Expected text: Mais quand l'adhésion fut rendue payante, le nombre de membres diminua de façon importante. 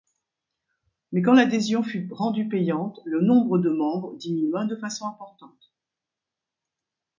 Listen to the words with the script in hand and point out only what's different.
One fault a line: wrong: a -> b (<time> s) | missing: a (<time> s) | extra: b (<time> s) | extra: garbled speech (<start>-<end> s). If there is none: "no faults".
no faults